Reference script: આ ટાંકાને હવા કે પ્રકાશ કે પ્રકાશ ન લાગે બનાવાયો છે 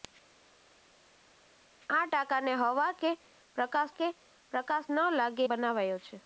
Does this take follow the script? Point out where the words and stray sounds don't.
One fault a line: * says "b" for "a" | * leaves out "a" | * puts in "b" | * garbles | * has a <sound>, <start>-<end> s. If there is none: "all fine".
all fine